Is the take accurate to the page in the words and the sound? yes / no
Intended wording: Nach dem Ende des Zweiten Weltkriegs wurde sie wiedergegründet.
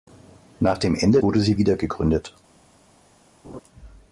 no